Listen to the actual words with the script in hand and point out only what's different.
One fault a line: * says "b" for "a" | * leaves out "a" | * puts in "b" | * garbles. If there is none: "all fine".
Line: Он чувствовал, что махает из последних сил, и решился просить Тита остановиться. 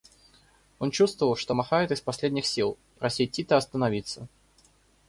* leaves out "решился"